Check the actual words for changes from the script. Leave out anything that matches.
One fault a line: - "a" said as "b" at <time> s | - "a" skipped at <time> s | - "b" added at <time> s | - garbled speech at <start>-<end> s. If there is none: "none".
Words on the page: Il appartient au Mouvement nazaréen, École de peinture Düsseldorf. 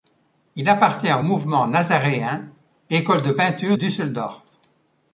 none